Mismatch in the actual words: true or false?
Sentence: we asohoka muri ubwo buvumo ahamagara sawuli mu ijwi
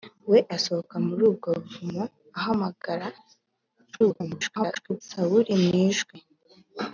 true